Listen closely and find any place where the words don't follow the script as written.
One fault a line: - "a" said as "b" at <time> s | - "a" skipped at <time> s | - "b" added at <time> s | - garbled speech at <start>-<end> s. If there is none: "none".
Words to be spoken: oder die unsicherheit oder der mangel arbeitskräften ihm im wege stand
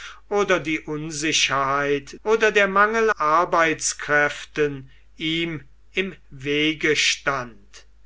none